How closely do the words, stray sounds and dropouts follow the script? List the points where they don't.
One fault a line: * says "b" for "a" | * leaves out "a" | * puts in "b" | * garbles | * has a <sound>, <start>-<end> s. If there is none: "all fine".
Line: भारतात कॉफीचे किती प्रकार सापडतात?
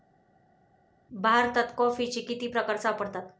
all fine